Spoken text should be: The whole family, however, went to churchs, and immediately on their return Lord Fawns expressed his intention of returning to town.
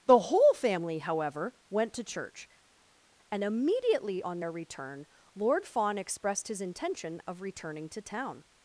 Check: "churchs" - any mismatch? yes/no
yes